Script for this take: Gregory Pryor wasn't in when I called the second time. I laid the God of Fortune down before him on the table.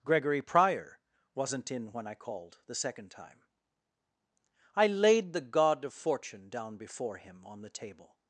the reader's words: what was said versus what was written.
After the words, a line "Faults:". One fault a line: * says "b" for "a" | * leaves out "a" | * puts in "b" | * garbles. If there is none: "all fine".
Gregory Pryor wasn't in when I called the second time. I laid the God of Fortune down before him on the table.
Faults:
all fine